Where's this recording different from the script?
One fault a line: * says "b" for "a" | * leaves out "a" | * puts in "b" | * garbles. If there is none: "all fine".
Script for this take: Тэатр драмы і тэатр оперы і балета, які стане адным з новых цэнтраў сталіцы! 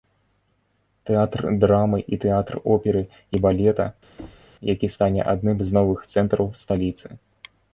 all fine